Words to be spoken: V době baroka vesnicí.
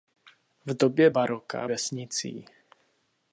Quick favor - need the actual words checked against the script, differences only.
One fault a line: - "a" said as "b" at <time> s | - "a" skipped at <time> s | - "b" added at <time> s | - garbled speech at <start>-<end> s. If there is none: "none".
none